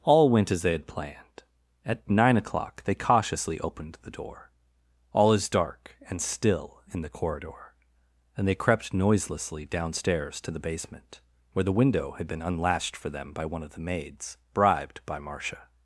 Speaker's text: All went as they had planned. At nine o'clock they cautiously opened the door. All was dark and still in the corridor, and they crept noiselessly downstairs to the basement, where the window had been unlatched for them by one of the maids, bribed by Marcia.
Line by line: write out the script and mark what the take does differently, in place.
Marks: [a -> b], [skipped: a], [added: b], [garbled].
All went as they had planned. At nine o'clock they cautiously opened the door. All [was -> is] dark and still in the corridor, and they crept noiselessly downstairs to the basement, where the window had been unlatched for them by one of the maids, bribed by Marcia.